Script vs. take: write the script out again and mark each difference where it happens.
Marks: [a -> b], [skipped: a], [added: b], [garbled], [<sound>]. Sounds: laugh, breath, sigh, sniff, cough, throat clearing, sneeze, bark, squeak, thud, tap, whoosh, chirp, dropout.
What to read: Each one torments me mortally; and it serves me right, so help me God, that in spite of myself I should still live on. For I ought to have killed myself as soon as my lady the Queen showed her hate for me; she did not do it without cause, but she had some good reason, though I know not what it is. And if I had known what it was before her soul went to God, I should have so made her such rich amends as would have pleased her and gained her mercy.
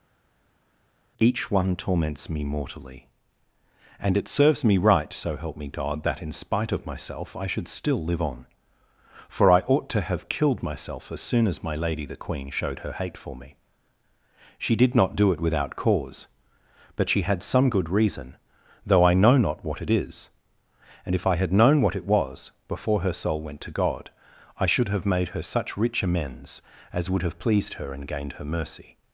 Each one torments me mortally; and it serves me right, so help me God, that in spite of myself I should still live on. For I ought to have killed myself as soon as my lady the Queen showed her hate for me; she did not do it without cause, but she had some good reason, though I know not what it is. And if I had known what it was before her soul went to God, I should have [skipped: so] made her such rich amends as would have pleased her and gained her mercy.